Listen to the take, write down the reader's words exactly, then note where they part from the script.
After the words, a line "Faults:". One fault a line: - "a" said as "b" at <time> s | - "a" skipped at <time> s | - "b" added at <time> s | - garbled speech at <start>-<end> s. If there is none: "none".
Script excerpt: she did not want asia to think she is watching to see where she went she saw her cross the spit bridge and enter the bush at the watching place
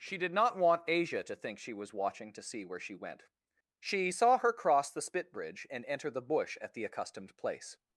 she did not want asia to think she was watching to see where she went she saw her cross the spit bridge and enter the bush at the accustomed place
Faults:
- "is" said as "was" at 1.7 s
- "watching" said as "accustomed" at 6.8 s